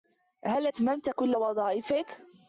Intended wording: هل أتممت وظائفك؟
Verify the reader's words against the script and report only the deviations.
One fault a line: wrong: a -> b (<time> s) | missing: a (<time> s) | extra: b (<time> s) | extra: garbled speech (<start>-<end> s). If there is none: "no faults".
extra: كل (1.1 s)